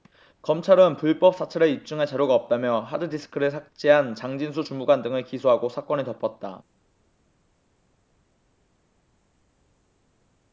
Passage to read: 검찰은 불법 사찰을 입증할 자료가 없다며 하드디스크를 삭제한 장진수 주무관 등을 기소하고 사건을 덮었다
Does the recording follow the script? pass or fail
pass